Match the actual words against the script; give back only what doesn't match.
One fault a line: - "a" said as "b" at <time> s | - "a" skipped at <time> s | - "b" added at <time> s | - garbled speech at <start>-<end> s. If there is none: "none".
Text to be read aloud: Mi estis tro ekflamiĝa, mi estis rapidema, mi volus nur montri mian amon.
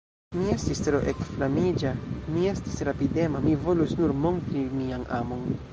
none